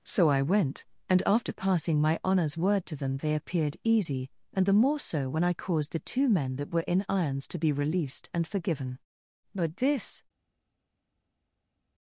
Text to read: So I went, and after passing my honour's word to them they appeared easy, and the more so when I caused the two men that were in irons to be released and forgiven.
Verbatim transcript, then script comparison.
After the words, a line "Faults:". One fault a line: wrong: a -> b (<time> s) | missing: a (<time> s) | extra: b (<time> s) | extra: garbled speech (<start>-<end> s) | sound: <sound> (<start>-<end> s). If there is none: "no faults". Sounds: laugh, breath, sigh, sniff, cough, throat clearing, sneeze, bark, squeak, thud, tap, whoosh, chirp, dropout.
So I went, and after passing my honour's word to them they appeared easy, and the more so when I caused the two men that were in irons to be released and forgiven. But this
Faults:
extra: But this (9.5 s)